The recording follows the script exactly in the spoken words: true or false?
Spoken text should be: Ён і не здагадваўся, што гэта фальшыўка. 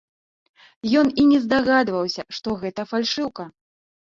true